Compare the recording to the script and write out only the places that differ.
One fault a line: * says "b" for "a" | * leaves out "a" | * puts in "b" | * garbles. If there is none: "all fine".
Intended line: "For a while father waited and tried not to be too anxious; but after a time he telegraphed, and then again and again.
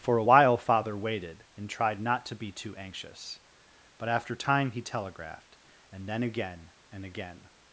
* leaves out "a"